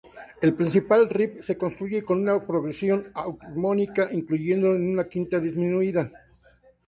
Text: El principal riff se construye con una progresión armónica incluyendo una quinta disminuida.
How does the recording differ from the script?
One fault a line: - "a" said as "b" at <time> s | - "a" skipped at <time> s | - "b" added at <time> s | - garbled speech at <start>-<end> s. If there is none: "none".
none